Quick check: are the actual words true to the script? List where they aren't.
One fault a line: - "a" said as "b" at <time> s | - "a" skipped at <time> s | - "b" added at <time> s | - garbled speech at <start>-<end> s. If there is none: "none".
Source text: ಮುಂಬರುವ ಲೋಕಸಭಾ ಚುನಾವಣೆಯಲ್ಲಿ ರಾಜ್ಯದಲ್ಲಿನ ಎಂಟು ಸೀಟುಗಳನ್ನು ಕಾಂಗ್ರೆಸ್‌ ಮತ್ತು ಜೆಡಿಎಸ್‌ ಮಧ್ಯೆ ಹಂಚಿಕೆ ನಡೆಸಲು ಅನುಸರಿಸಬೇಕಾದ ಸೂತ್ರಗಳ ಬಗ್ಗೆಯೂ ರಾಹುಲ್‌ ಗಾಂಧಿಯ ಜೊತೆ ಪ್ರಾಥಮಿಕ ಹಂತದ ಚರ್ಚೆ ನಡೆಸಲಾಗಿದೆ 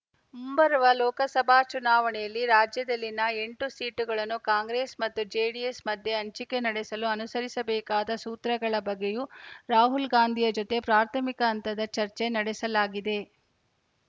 none